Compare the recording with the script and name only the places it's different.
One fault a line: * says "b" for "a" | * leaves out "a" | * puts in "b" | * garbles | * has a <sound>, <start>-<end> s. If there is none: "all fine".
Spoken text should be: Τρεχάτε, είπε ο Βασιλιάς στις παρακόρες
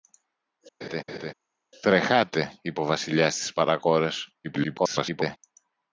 * has a laugh, 0.8-1.3 s
* garbles